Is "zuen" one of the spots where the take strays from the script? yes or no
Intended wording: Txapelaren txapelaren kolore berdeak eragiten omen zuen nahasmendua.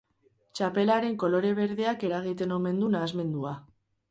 yes